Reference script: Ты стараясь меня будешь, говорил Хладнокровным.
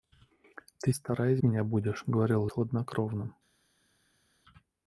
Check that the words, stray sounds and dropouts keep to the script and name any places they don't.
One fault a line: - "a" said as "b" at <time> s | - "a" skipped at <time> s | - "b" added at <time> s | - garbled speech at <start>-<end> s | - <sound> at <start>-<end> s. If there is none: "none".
none